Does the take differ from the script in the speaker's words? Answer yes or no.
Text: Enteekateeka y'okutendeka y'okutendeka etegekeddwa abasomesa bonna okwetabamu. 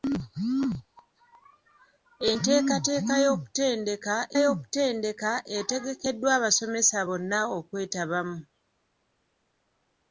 no